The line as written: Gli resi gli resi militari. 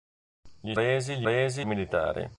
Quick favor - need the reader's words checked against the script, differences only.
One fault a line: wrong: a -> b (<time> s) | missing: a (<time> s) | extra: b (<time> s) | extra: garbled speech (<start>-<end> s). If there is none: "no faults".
no faults